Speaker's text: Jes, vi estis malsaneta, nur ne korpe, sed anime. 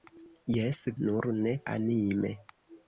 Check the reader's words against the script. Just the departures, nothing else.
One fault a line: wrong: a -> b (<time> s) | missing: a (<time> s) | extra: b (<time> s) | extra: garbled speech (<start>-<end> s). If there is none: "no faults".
missing: vi estis malsaneta (0.8 s)
missing: korpe sed (1.5 s)